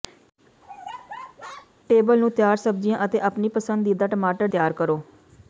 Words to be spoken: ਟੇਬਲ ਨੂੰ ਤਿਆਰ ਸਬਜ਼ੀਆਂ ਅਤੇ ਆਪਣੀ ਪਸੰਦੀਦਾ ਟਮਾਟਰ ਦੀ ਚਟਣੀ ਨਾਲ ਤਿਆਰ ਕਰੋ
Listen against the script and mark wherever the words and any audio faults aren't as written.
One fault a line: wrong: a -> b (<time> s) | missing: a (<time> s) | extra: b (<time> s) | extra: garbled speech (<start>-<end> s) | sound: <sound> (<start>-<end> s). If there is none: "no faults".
sound: laugh (0.6-1.7 s)
missing: ਦੀ ਚਟਣੀ ਨਾਲ (4.5 s)